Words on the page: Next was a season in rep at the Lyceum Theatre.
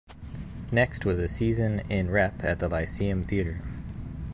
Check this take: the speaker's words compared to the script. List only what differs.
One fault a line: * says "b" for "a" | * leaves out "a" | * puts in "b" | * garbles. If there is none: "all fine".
all fine